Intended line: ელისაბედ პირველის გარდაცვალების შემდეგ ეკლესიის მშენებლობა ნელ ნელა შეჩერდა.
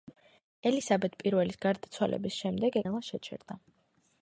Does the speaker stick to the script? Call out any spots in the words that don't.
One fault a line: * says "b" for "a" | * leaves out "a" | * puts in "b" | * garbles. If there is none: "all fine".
* leaves out "ეკლესიის მშენებლობა ნელ"